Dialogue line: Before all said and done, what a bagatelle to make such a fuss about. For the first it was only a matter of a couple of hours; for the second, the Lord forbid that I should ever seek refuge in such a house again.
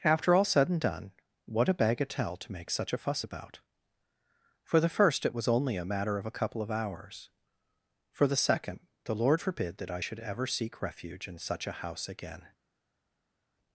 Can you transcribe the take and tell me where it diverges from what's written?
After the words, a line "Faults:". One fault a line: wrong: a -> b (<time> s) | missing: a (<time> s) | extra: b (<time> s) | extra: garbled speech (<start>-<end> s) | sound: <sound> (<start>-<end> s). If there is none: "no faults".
After all said and done, what a bagatelle to make such a fuss about. For the first it was only a matter of a couple of hours; for the second, the Lord forbid that I should ever seek refuge in such a house again.
Faults:
wrong: Before -> After (0.0 s)